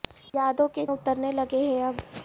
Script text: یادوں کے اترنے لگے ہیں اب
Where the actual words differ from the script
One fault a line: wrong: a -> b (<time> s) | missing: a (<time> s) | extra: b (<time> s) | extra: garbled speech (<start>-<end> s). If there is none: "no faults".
no faults